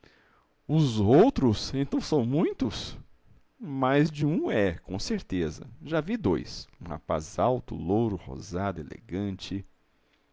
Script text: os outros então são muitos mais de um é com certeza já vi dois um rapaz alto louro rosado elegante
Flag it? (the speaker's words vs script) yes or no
no